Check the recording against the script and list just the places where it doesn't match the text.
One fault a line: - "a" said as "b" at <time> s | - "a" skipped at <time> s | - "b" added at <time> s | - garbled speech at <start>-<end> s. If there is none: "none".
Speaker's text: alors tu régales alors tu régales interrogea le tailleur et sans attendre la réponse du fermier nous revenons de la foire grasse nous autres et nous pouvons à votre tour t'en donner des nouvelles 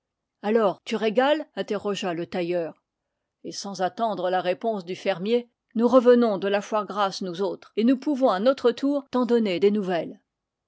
- "alors tu régales" skipped at 1.4 s
- "votre" said as "notre" at 8.4 s